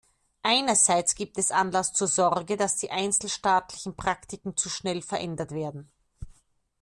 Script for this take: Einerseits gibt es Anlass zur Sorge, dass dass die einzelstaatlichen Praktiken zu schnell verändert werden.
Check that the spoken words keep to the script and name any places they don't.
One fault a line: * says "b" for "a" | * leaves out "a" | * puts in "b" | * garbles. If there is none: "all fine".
* leaves out "dass"